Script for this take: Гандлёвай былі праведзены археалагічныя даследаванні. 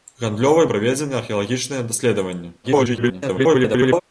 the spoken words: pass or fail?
fail